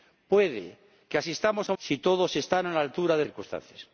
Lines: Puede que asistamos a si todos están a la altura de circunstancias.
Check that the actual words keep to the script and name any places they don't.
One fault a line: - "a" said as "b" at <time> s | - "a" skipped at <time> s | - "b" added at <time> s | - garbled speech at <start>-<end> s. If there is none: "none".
none